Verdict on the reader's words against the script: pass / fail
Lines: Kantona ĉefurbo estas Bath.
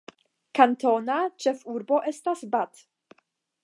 pass